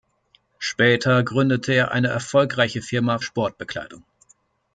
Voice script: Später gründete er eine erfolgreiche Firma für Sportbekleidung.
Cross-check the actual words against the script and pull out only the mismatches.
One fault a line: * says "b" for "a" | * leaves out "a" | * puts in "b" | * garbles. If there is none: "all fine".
* leaves out "für"